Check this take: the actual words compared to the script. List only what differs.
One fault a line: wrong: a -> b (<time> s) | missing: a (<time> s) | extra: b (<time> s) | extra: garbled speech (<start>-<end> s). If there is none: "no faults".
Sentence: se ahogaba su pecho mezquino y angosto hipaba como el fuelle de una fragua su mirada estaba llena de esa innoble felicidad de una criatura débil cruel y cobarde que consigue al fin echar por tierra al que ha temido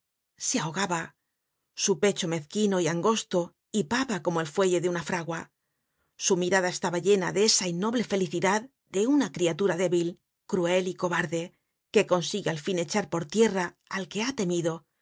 no faults